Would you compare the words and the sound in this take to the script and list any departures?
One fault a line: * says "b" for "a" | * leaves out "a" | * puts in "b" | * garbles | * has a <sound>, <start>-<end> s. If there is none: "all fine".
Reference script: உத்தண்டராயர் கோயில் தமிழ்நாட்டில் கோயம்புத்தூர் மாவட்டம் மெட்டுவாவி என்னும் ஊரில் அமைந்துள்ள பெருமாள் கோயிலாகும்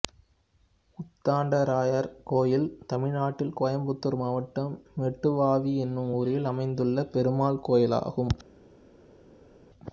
all fine